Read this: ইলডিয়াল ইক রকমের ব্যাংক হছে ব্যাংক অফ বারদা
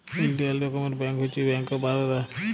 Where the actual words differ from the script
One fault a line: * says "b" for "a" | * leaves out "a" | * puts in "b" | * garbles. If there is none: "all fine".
* leaves out "ইক"